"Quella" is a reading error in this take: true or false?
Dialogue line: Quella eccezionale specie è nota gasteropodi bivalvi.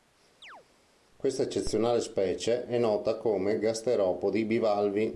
true